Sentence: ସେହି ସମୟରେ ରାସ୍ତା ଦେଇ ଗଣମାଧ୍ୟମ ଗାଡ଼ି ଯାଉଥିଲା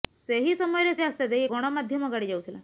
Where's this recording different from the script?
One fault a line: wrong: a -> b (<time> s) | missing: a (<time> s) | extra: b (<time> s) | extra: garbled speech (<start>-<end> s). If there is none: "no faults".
no faults